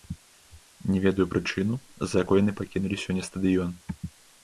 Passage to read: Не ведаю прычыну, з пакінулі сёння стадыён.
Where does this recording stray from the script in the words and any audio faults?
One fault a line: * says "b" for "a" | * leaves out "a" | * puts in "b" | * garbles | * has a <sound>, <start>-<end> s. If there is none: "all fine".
* puts in "за якой яны"